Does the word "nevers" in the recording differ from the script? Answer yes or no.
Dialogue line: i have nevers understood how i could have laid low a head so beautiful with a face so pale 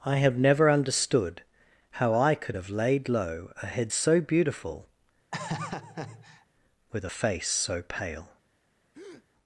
yes